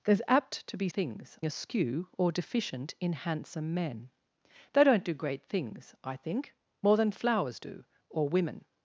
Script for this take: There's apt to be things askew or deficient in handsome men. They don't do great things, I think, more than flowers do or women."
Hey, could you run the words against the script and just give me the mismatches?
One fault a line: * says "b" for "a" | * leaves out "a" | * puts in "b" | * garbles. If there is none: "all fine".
all fine